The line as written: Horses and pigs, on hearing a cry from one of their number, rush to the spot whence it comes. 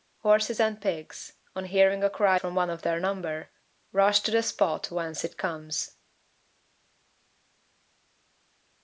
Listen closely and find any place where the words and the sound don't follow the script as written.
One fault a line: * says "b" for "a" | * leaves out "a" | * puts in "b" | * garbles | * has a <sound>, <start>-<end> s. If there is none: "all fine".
all fine